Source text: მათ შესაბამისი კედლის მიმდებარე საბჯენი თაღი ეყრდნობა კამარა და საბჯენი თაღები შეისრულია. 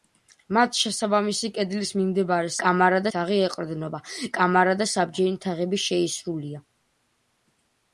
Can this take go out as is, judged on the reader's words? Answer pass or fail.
fail